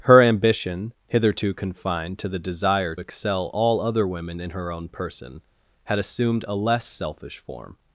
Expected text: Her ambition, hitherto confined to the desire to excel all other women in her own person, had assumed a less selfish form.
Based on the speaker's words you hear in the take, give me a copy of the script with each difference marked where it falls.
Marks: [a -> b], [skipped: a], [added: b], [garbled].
Her ambition, hitherto confined to the desire [skipped: to] excel all other women in her own person, had assumed a less selfish form.